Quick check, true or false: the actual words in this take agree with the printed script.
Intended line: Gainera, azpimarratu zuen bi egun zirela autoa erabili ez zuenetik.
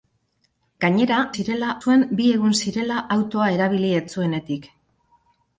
false